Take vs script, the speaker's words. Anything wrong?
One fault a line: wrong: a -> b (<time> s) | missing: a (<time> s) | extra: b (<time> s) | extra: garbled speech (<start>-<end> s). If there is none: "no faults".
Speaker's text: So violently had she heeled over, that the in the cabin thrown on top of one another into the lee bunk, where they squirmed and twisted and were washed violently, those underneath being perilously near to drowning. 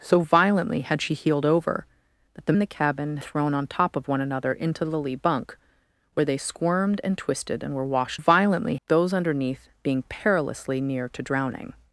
no faults